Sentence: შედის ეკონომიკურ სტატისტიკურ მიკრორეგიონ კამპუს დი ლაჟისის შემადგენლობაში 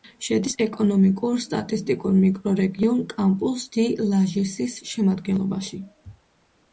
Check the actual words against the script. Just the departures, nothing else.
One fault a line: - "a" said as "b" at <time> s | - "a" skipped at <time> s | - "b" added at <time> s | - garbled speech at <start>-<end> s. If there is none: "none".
none